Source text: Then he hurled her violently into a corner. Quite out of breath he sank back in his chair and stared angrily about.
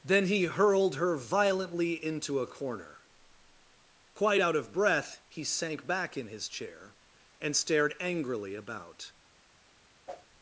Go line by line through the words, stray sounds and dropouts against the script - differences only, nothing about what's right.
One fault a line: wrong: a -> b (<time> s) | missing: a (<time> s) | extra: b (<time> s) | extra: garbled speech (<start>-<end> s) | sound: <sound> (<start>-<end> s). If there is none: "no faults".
sound: whoosh (10.1-10.3 s)